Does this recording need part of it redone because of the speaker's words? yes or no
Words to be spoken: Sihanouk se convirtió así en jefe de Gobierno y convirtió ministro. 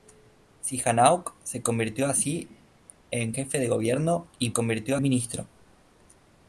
no